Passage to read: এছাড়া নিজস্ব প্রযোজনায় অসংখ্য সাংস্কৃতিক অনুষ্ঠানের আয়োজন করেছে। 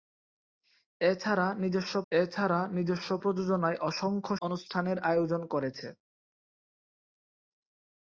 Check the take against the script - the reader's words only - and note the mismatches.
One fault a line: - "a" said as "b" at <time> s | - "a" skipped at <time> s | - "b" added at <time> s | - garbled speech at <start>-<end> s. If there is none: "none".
- "এছাড়া নিজস্ব" added at 2.1 s
- "সাংস্কৃতিক" skipped at 4.3 s